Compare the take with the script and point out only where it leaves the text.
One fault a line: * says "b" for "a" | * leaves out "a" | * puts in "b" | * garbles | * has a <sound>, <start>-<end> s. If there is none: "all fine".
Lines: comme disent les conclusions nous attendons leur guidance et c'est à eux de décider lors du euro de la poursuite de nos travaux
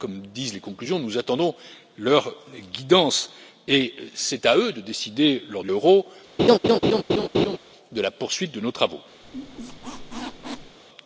* has a laugh, 6.4-7.6 s
* has a squeak, 9.2-10.8 s